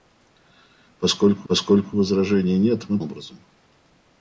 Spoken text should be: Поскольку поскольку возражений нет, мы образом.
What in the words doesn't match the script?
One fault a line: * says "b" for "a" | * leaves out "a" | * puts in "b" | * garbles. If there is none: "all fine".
all fine